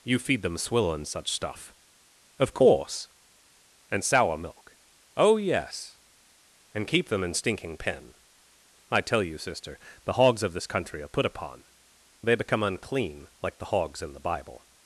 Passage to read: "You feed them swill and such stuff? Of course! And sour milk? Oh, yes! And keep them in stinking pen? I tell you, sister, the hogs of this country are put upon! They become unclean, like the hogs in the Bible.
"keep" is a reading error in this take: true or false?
false